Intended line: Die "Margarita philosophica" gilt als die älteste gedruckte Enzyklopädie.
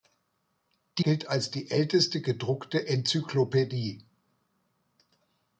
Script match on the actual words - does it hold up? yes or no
no